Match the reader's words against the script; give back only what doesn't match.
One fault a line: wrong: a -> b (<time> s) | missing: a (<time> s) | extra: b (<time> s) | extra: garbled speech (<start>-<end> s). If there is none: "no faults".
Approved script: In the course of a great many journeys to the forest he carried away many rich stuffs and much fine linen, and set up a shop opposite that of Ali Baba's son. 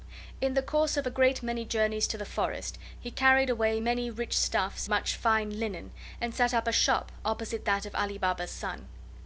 missing: and (4.9 s)